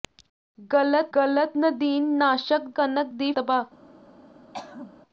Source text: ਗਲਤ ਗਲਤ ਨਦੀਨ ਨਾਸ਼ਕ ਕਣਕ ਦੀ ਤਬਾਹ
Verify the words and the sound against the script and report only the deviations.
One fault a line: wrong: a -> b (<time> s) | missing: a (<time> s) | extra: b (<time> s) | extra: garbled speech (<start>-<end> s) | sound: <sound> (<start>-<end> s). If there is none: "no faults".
sound: throat clearing (4.5-5.0 s)